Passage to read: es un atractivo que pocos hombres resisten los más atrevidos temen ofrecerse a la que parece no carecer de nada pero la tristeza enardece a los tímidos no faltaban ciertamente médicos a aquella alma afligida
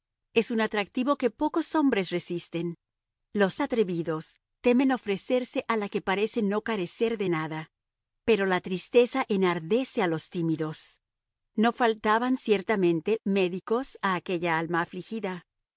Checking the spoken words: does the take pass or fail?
fail